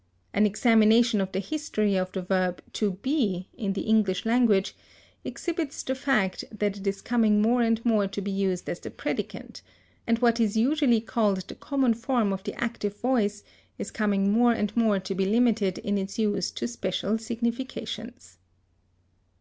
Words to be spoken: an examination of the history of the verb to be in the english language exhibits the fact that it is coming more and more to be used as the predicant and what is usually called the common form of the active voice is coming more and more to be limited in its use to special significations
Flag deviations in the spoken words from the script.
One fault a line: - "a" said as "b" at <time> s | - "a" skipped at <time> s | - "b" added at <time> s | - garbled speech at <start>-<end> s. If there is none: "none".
none